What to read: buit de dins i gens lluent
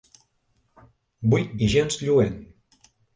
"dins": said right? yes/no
no